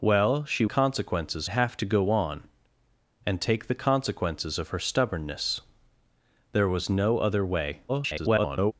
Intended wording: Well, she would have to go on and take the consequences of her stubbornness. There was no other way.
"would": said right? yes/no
no